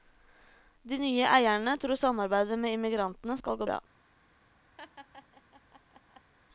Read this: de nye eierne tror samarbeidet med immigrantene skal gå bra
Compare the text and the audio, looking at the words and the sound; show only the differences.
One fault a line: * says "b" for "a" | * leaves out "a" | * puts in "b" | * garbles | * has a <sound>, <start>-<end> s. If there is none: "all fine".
* has a laugh, 4.8-6.3 s